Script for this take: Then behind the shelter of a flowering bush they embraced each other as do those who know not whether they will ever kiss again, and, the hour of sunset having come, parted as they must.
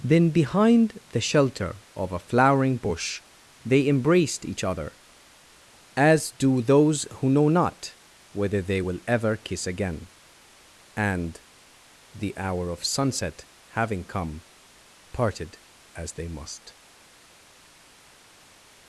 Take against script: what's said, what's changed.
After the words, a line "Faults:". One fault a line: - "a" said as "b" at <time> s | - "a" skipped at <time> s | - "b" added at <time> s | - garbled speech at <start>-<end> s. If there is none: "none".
Then behind the shelter of a flowering bush they embraced each other as do those who know not whether they will ever kiss again, and, the hour of sunset having come, parted as they must.
Faults:
none